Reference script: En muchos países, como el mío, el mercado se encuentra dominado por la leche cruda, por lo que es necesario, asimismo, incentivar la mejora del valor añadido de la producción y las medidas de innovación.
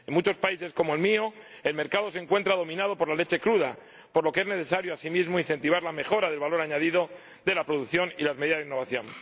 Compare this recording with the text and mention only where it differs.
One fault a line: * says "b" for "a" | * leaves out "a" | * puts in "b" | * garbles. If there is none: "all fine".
all fine